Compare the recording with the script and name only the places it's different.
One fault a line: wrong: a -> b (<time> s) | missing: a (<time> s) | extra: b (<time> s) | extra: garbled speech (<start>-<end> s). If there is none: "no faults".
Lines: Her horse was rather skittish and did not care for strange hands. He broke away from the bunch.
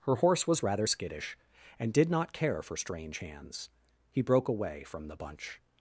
no faults